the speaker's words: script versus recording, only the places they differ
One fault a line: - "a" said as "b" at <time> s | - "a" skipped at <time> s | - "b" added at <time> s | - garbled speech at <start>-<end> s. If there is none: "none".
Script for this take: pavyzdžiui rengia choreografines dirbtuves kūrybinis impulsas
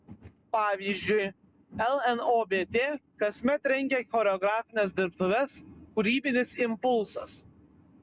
- "lnobt kasmet" added at 2.1 s